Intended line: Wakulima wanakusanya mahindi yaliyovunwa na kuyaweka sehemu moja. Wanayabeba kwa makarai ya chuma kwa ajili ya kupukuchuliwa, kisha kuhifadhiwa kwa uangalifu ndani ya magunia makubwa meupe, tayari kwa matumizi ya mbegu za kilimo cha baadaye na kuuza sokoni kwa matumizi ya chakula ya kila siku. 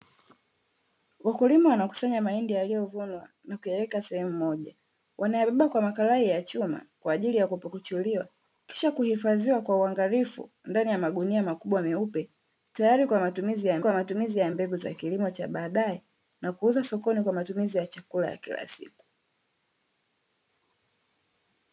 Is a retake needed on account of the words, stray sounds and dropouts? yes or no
yes